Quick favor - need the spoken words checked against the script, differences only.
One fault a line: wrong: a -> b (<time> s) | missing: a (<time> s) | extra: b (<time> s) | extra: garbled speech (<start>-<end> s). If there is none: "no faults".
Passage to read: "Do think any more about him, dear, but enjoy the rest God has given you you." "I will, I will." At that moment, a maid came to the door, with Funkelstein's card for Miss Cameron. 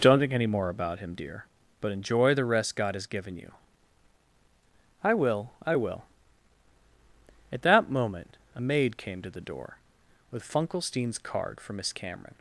wrong: Do -> Don't (0.0 s)
missing: you (3.5 s)